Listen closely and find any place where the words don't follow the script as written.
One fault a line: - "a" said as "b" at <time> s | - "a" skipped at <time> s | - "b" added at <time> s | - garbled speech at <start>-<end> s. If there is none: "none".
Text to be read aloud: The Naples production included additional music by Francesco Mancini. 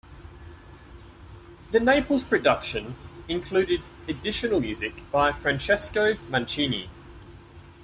none